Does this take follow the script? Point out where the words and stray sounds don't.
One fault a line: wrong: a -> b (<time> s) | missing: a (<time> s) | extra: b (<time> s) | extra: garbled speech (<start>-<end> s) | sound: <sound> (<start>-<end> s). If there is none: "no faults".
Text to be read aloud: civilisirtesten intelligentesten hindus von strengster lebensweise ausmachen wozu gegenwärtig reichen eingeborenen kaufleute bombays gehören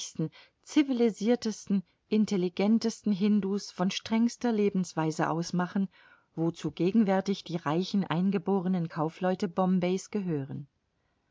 extra: die (7.4 s)